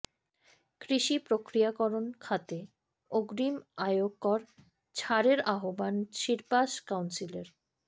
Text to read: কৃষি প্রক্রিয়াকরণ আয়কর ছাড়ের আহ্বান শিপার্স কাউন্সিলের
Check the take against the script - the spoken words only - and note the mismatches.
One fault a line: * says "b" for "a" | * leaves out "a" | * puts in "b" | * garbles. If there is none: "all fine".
* puts in "খাতে অগ্রিম"